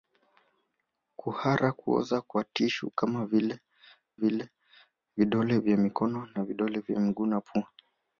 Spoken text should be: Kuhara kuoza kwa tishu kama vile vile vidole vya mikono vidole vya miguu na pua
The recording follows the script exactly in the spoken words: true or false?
true